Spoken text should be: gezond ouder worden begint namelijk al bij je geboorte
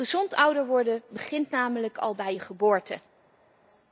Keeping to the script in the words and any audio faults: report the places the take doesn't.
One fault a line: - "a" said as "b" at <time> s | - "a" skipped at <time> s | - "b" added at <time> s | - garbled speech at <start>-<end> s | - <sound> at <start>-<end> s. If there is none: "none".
none